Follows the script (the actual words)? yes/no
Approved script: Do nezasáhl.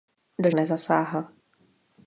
yes